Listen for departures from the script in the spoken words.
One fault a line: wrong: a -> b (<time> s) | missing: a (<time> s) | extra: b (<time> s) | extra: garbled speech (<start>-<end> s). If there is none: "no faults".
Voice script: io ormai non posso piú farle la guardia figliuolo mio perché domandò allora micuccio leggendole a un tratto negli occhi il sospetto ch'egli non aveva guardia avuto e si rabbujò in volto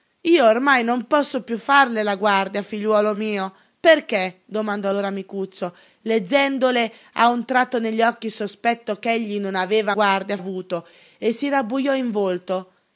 no faults